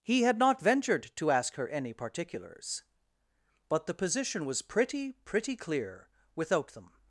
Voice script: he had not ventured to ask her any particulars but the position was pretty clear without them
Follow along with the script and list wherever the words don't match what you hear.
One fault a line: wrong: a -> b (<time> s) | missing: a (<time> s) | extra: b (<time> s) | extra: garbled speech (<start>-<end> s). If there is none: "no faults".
extra: pretty (5.1 s)